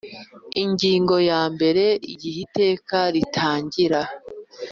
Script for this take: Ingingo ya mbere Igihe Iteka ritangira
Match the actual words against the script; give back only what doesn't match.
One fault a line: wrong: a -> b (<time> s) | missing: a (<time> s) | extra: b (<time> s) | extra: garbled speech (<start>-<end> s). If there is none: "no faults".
no faults